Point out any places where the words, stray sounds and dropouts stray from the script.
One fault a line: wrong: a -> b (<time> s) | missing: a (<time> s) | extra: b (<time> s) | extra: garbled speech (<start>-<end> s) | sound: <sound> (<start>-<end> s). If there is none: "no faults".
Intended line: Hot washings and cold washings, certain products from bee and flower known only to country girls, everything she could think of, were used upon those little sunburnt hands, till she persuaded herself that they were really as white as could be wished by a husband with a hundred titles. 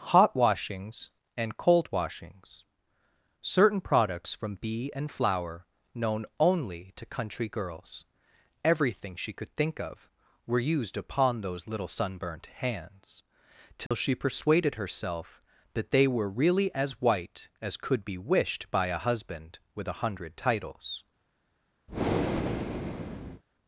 sound: dropout (13.9-13.9 s)
sound: breath (21.9-23.4 s)